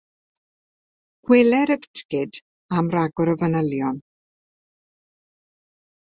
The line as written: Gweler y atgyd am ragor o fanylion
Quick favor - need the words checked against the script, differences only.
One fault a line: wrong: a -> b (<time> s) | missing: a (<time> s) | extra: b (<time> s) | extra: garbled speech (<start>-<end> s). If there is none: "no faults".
no faults